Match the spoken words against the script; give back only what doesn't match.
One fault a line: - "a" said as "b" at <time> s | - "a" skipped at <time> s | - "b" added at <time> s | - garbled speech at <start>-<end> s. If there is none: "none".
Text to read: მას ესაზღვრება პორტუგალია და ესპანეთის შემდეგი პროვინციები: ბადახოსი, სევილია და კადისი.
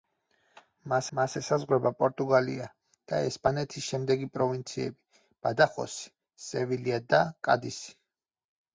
- "მას" added at 1.2 s